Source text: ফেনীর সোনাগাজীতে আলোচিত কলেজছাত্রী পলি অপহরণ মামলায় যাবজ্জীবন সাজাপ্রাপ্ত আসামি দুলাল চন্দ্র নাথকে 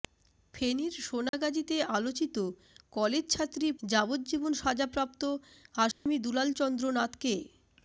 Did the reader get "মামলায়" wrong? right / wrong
wrong